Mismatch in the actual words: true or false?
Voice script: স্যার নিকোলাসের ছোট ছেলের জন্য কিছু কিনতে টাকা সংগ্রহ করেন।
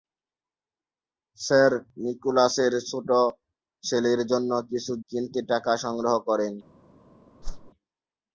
false